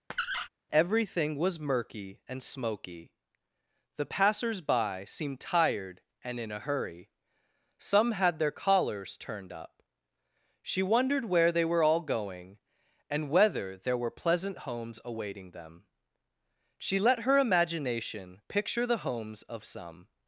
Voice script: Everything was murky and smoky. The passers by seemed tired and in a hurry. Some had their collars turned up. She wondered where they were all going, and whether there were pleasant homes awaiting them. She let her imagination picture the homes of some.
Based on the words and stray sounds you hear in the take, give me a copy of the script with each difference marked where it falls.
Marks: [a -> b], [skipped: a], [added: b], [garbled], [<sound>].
[squeak] Everything was murky and smoky. The passers by seemed tired and in a hurry. Some had their collars turned up. She wondered where they were all going, and whether there were pleasant homes awaiting them. She let her imagination picture the homes of some.